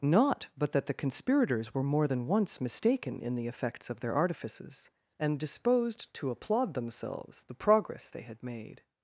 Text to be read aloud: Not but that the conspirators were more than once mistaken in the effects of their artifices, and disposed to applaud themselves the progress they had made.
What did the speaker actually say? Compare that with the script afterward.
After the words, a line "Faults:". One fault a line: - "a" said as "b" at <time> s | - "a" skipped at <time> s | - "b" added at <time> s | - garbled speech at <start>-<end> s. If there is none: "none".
Not but that the conspirators were more than once mistaken in the effects of their artifices, and disposed to applaud themselves the progress they had made.
Faults:
none